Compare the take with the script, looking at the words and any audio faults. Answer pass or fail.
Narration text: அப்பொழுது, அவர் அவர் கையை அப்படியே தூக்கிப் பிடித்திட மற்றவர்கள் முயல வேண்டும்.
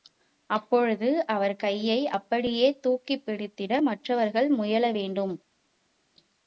fail